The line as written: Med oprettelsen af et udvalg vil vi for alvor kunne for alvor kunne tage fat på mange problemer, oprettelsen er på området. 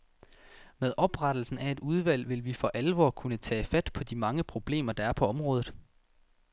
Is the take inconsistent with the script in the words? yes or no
yes